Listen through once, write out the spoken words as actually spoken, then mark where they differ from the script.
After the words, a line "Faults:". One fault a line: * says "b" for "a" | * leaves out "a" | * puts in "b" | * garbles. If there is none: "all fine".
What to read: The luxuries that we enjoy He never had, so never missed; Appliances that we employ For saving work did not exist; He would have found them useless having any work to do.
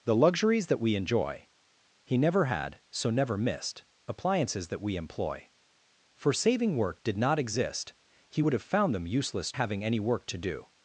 The luxuries that we enjoy He never had, so never missed; Appliances that we employ For saving work did not exist; He would have found them useless having any work to do.
Faults:
all fine